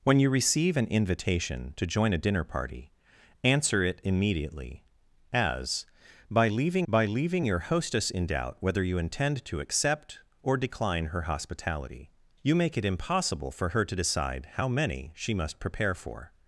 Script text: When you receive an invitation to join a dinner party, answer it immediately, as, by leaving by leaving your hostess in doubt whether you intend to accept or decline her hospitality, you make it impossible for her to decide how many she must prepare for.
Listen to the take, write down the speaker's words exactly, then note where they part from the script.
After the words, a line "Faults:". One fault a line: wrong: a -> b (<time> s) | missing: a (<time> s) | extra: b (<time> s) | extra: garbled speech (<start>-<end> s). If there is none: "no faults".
When you receive an invitation to join a dinner party, answer it immediately, as, by leaving by leaving your hostess in doubt whether you intend to accept or decline her hospitality, you make it impossible for her to decide how many she must prepare for.
Faults:
no faults